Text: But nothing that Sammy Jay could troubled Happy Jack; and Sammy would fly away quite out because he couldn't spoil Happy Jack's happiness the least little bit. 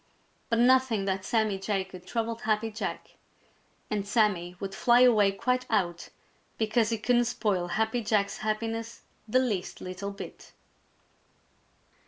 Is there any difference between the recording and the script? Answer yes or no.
no